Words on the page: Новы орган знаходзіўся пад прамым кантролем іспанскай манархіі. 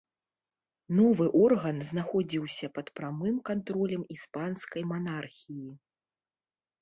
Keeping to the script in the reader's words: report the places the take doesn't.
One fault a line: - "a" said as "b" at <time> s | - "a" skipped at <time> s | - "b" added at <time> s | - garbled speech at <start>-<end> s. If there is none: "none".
none